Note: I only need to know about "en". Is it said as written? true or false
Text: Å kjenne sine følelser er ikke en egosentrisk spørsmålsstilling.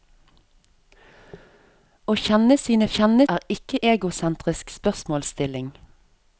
false